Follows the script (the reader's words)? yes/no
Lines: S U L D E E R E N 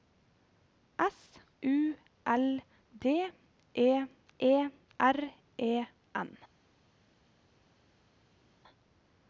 yes